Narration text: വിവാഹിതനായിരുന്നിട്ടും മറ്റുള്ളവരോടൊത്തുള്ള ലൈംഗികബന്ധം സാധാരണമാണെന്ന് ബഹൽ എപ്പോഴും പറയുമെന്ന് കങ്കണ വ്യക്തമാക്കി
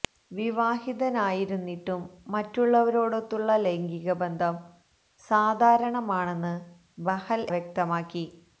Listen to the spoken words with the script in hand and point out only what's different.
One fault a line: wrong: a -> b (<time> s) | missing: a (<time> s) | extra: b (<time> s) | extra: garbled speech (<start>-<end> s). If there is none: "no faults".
missing: എപ്പോഴും പറയുമെന്ന് കങ്കണ (7.4 s)